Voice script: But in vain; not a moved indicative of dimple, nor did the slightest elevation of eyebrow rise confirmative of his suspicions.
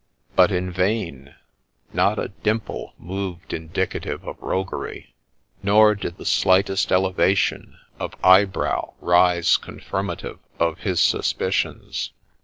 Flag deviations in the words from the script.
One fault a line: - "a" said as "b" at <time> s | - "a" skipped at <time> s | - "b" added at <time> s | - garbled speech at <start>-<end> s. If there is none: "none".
- "dimple" added at 2.3 s
- "dimple" said as "roguery" at 4.4 s